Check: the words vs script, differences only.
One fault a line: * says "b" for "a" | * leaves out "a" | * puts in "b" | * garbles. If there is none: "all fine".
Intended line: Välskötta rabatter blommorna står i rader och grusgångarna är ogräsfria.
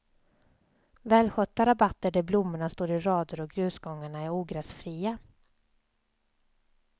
* puts in "där"